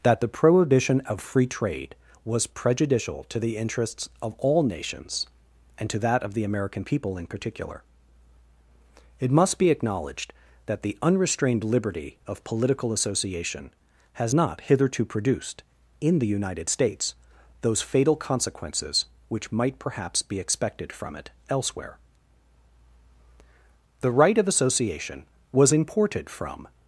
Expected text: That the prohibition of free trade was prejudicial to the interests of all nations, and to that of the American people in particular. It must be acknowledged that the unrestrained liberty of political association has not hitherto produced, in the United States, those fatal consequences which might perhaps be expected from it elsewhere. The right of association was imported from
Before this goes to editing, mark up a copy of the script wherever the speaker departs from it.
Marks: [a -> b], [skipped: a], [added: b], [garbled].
That the prohibition of free trade was prejudicial to the interests of all nations, and to that of the American people in particular. It must be acknowledged that the unrestrained liberty of political association has not hitherto produced, in the United States, those fatal consequences which might perhaps be expected from it elsewhere. The right of association was imported from